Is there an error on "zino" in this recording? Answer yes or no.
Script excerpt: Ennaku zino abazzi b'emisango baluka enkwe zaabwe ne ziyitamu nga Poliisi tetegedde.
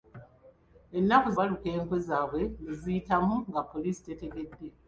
yes